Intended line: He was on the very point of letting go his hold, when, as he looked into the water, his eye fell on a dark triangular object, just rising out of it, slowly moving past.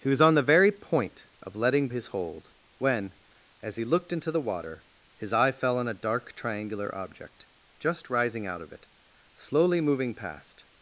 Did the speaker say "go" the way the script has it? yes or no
no